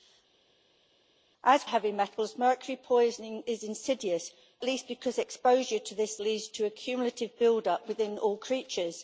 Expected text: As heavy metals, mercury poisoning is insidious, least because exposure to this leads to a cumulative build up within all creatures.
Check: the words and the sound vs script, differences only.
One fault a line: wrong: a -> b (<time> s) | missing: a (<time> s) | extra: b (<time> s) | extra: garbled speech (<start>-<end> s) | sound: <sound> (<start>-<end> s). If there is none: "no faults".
no faults